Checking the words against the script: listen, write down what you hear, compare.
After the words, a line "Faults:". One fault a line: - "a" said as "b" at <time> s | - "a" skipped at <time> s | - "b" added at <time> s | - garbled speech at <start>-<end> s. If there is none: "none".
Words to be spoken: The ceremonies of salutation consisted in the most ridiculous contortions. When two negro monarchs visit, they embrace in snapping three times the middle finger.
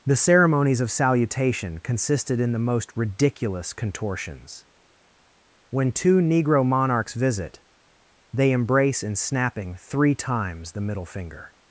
The ceremonies of salutation consisted in the most ridiculous contortions. When two negro monarchs visit, they embrace in snapping three times the middle finger.
Faults:
none